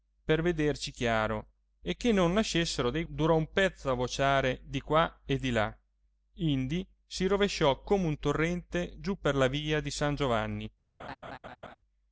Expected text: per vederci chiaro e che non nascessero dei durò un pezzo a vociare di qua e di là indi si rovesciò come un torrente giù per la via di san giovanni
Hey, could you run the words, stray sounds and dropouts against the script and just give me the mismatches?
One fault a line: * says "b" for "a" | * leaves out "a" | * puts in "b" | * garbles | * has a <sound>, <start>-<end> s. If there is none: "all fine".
* has a laugh, 11.0-11.8 s